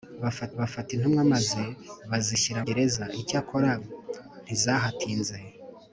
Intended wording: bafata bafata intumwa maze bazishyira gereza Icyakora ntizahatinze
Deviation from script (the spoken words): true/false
false